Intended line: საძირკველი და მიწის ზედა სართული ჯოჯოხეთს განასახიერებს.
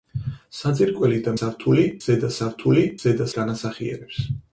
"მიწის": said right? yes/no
no